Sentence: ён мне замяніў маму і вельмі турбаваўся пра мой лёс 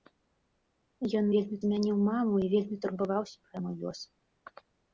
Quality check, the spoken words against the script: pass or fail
fail